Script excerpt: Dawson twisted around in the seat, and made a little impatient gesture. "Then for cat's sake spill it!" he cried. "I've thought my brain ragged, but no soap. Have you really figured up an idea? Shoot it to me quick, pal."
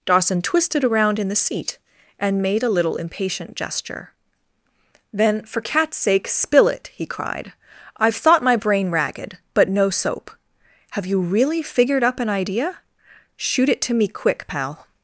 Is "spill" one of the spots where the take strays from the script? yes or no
no